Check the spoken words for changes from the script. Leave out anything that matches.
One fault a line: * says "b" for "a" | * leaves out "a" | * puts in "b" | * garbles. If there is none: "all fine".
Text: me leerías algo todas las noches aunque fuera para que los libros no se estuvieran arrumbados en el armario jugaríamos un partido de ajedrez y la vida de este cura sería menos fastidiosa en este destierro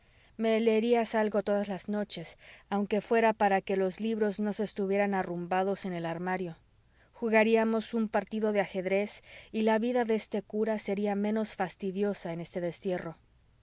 all fine